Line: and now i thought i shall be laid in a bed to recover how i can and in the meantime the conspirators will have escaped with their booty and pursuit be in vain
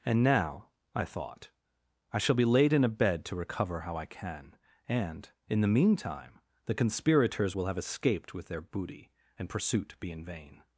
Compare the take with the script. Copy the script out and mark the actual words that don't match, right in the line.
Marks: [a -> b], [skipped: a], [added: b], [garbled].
and now i thought i shall be laid in a bed to recover how i can and in the meantime the conspirators will have escaped with their booty and pursuit be in vain